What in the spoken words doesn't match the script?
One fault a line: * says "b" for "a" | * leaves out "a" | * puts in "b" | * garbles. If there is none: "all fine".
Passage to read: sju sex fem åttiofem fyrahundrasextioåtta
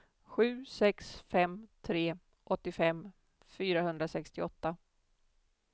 * puts in "tre"